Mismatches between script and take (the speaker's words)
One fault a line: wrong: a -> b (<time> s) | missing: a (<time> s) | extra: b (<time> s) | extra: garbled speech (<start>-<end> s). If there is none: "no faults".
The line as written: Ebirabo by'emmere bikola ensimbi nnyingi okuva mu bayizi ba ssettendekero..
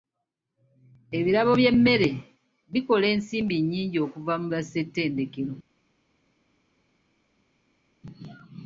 missing: bayizi (4.5 s)